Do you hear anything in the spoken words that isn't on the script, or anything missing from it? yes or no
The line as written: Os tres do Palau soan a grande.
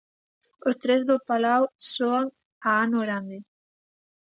yes